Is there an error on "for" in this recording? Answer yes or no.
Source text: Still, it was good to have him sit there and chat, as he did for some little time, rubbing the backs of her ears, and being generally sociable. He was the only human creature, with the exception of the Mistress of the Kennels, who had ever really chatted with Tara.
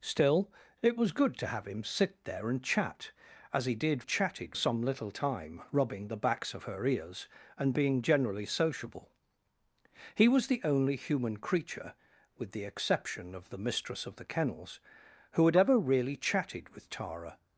yes